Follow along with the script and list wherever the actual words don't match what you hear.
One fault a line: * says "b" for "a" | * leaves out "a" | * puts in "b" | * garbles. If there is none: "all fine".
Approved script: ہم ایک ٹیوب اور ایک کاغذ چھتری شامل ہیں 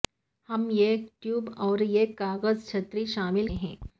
all fine